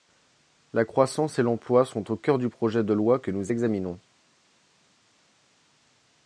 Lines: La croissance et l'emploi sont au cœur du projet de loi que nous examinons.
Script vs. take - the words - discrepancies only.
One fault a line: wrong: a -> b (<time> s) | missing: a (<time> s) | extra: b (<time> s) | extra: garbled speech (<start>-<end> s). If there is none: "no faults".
no faults